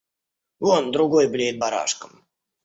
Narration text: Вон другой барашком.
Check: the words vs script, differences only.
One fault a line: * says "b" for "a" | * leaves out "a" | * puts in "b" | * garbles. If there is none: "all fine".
* puts in "блеет"